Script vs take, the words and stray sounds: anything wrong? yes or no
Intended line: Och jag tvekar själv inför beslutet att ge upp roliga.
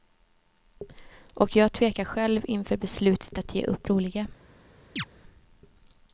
yes